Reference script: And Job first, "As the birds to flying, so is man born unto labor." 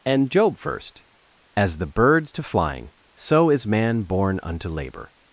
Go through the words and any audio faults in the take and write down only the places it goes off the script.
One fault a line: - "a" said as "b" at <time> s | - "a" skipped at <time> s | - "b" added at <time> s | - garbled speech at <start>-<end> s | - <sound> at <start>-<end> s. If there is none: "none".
none